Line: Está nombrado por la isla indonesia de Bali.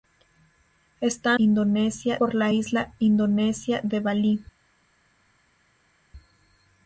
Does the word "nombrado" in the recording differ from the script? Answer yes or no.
yes